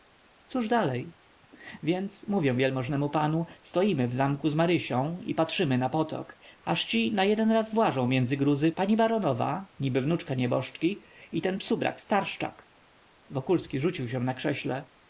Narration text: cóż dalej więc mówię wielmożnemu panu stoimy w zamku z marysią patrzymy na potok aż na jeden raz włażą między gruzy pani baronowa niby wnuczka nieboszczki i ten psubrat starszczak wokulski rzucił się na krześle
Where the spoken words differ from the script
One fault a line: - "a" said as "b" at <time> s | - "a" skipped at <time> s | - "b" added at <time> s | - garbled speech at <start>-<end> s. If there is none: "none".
- "i" added at 5.2 s
- "ci" added at 6.8 s